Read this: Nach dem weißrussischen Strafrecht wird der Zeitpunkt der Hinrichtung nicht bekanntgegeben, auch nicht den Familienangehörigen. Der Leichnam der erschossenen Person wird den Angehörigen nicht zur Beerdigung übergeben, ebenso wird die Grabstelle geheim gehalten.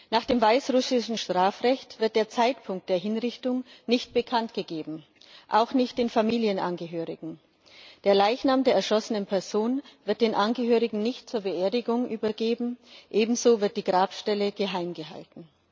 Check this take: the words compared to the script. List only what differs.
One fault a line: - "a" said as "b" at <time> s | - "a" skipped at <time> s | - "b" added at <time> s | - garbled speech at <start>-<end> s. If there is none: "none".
none